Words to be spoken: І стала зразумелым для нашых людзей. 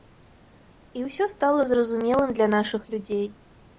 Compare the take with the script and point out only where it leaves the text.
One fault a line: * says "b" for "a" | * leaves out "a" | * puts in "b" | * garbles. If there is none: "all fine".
* puts in "ўсё"